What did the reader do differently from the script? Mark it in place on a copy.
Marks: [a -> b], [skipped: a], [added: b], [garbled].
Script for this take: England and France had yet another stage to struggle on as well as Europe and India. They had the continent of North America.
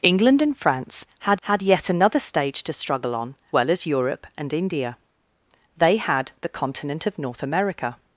England and France had [added: had] yet another stage to struggle on [skipped: as] well as Europe and India. They had the continent of North America.